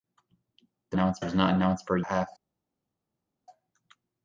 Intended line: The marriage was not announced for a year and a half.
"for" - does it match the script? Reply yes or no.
yes